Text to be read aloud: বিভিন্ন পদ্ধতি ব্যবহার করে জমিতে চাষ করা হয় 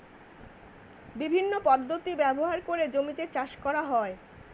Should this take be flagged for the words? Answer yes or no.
no